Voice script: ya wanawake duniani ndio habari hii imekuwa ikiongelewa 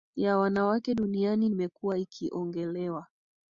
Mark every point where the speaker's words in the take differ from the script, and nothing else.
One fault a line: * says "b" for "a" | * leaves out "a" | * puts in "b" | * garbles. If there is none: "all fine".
* leaves out "ndio habari hii"